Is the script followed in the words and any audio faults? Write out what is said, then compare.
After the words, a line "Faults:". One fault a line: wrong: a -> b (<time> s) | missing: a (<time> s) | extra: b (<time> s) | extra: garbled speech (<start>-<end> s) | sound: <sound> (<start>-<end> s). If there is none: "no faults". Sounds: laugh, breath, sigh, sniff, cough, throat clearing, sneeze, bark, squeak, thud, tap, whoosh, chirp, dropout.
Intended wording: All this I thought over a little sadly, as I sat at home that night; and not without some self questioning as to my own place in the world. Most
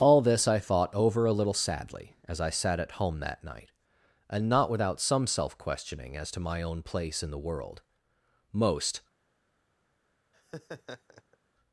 All this I thought over a little sadly, as I sat at home that night; and not without some self questioning as to my own place in the world. Most
Faults:
sound: laugh (10.3-11.4 s)